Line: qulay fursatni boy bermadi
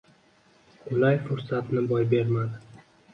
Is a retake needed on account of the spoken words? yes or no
no